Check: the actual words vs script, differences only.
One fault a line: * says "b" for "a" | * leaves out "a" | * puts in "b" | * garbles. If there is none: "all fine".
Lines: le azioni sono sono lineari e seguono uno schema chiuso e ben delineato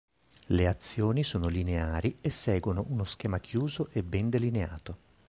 * leaves out "sono"